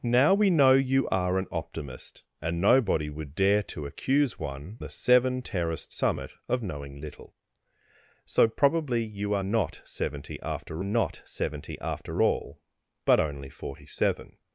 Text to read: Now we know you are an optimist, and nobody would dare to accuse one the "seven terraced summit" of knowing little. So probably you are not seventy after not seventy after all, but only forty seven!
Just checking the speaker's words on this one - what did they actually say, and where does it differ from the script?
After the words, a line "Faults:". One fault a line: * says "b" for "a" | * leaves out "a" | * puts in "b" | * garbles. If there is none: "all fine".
Now we know you are an optimist, and nobody would dare to accuse one the "seven terraced summit" of knowing little. So probably you are not seventy after not seventy after all, but only forty seven!
Faults:
all fine